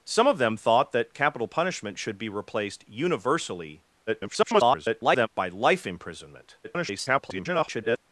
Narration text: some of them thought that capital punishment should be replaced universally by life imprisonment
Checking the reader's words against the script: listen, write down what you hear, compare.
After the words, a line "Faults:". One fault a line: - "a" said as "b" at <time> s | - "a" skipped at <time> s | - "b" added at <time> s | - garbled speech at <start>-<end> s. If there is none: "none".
some of them thought that capital punishment should be replaced universally [garbled] by life imprisonment [garbled]
Faults:
- garbled speech at 4.1-5.3 s
- garbled speech at 6.6-8.0 s